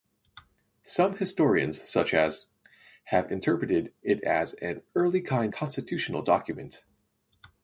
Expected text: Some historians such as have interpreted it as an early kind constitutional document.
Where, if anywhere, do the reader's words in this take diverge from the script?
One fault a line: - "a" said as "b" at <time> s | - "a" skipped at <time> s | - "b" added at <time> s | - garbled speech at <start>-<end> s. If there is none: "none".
none